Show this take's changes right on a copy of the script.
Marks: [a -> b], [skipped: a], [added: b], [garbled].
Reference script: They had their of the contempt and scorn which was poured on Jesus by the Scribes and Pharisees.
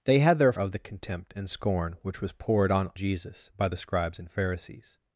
They had their of the contempt and scorn which was poured on Jesus by the Scribes and Pharisees.